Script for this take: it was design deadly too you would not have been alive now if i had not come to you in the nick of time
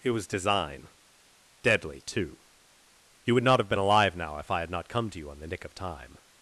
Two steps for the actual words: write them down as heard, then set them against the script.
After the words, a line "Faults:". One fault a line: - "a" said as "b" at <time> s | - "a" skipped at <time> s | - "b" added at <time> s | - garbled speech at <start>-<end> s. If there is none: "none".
it was design deadly too you would not have been alive now if i had not come to you on the nick of time
Faults:
- "in" said as "on" at 5.3 s